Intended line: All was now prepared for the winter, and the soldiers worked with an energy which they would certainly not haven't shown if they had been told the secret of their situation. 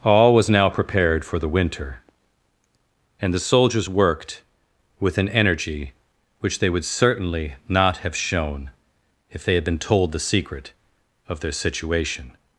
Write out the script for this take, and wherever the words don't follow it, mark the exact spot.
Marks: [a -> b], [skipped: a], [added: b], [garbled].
All was now prepared for the winter, and the soldiers worked with an energy which they would certainly not [haven't -> have] shown if they had been told the secret of their situation.